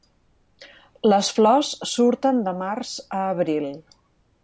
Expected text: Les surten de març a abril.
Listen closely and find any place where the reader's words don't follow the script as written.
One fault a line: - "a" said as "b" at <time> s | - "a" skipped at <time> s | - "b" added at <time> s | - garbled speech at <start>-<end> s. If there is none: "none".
- "flors" added at 1.4 s